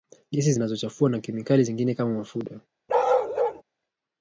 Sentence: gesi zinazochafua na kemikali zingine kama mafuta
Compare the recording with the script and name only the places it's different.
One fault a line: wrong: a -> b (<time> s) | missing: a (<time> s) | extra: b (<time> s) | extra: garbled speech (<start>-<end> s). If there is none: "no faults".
no faults